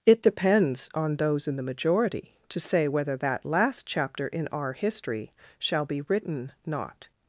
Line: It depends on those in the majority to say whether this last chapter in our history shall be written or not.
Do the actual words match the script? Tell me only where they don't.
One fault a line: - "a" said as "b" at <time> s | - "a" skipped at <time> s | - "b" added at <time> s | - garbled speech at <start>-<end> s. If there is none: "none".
- "this" said as "that" at 3.2 s
- "or" skipped at 6.5 s